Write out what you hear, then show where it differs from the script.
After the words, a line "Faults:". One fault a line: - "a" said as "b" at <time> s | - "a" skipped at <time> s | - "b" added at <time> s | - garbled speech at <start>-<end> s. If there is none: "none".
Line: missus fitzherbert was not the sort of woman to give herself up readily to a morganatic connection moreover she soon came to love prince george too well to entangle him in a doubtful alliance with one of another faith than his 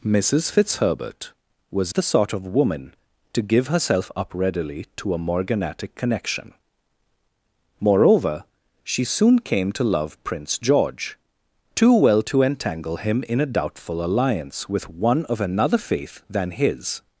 missus fitzherbert was the sort of woman to give herself up readily to a morganatic connection moreover she soon came to love prince george too well to entangle him in a doubtful alliance with one of another faith than his
Faults:
- "not" skipped at 1.9 s